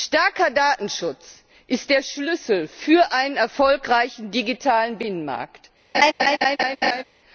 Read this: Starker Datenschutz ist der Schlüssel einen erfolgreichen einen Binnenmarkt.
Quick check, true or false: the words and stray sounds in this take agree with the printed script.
false